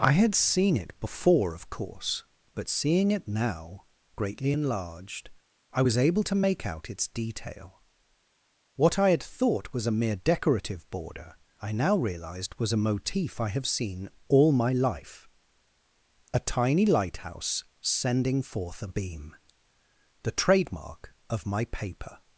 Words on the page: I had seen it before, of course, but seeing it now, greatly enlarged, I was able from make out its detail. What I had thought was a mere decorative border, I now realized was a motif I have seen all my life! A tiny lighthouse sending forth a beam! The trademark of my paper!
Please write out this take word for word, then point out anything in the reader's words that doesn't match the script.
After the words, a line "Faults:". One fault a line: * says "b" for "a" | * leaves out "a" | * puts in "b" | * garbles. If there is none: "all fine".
I had seen it before, of course, but seeing it now, greatly enlarged, I was able to make out its detail. What I had thought was a mere decorative border, I now realized was a motif I have seen all my life! A tiny lighthouse sending forth a beam! The trademark of my paper!
Faults:
* says "to" for "from"